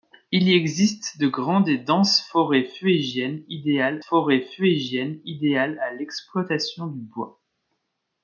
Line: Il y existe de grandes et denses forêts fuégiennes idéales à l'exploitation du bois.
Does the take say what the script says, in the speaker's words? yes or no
no